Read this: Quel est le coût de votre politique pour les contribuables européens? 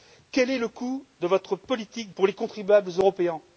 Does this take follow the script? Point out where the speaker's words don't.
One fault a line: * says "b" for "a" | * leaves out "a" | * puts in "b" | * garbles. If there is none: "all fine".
all fine